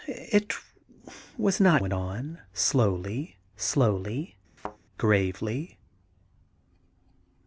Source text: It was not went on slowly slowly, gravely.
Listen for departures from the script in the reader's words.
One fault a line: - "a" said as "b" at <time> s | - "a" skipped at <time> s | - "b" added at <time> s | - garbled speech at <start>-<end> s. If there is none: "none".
none